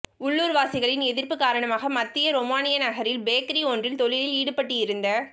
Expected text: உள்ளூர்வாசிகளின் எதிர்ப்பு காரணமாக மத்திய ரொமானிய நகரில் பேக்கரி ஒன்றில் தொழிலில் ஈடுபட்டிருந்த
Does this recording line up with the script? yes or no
yes